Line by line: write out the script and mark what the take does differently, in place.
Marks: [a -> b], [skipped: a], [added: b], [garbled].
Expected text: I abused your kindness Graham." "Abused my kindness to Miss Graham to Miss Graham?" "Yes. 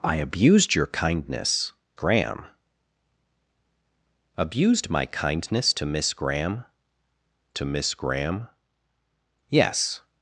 I abused your kindness Graham." "Abused my kindness to Miss Graham to Miss Graham?" "Yes.